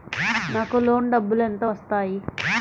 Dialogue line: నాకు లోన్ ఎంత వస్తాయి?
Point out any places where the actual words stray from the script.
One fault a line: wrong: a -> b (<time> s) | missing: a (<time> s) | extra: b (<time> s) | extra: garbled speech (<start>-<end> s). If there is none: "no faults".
extra: డబ్బులు (1.1 s)